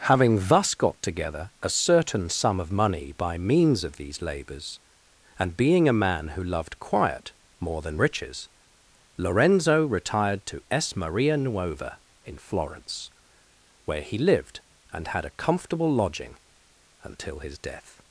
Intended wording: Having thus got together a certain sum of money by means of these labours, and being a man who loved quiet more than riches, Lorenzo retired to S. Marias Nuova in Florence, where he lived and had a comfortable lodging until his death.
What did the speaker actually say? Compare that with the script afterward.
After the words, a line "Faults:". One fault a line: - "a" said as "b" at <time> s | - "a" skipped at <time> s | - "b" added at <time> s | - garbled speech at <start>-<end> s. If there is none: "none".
Having thus got together a certain sum of money by means of these labours, and being a man who loved quiet more than riches, Lorenzo retired to S. Maria Nuova in Florence, where he lived and had a comfortable lodging until his death.
Faults:
- "Marias" said as "Maria" at 10.9 s